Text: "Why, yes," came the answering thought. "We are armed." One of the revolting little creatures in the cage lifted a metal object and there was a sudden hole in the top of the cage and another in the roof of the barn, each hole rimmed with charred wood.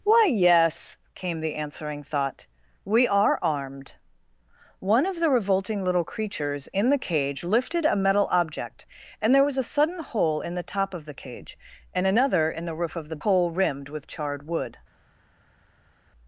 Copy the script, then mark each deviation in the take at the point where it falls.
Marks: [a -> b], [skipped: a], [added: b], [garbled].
"Why, yes," came the answering thought. "We are armed." One of the revolting little creatures in the cage lifted a metal object and there was a sudden hole in the top of the cage and another in the roof of the [skipped: barn, each] hole rimmed with charred wood.